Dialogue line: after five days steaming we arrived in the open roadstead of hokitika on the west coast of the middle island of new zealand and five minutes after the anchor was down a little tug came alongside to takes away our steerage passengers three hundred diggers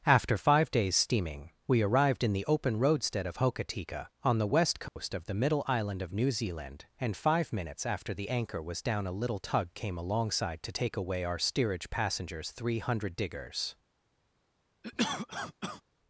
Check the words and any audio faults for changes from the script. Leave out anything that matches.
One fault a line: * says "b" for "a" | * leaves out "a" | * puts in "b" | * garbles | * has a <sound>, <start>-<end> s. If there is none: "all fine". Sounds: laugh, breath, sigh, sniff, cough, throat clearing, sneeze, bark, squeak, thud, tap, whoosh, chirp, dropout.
* has a dropout, 4.9-5.0 s
* says "take" for "takes"
* has a cough, 14.8-15.8 s